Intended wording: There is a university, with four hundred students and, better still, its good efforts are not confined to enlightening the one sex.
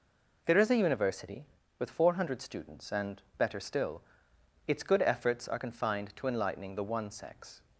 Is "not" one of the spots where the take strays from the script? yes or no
yes